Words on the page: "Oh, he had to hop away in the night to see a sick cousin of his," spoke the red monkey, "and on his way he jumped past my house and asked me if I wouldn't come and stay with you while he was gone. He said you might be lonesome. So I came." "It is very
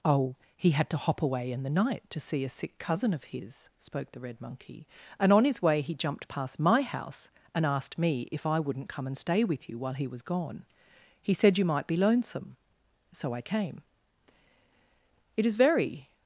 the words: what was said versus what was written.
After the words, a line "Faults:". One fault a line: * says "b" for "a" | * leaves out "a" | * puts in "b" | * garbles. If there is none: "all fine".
"Oh, he had to hop away in the night to see a sick cousin of his," spoke the red monkey, "and on his way he jumped past my house and asked me if I wouldn't come and stay with you while he was gone. He said you might be lonesome. So I came." "It is very
Faults:
all fine